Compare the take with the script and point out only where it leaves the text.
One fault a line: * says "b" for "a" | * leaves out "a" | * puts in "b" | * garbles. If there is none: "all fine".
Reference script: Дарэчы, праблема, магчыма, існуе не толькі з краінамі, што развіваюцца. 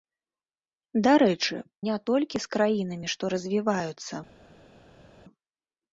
* leaves out "праблема магчыма існуе"